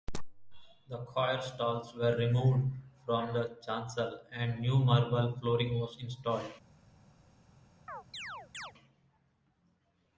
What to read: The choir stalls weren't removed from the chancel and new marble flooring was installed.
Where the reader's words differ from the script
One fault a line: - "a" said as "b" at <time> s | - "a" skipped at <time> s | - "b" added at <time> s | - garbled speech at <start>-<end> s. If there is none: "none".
- "weren't" said as "were" at 1.9 s